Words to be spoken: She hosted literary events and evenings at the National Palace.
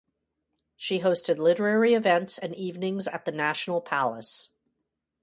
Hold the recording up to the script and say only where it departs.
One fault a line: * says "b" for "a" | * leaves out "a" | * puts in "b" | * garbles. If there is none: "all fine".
all fine